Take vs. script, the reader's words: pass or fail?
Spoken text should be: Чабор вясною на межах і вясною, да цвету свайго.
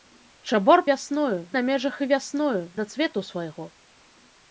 pass